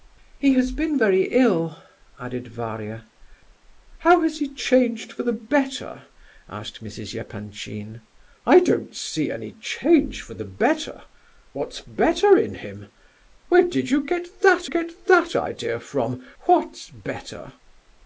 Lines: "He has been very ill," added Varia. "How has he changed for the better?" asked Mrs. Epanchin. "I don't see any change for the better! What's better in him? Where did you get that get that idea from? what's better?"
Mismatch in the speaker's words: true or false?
false